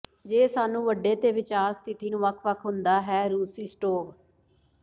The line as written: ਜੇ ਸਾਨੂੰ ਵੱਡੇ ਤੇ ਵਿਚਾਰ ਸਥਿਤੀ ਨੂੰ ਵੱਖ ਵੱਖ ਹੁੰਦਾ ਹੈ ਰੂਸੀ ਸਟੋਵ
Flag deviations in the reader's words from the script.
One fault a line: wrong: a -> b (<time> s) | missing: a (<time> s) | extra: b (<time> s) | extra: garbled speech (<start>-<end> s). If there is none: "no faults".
no faults